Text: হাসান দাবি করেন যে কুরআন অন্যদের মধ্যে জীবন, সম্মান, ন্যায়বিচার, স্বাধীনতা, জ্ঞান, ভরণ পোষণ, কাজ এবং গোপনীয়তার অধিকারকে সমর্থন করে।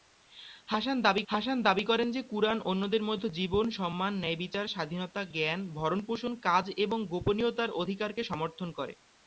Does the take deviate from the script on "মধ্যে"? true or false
false